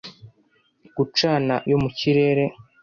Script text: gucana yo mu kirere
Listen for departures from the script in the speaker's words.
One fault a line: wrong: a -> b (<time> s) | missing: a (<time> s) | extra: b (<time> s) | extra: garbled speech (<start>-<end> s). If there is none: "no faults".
no faults